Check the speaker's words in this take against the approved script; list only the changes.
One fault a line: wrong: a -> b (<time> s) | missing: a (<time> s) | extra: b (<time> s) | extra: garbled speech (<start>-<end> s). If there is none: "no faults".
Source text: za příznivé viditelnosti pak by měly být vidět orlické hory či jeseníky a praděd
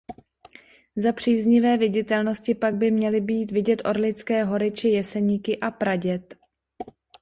no faults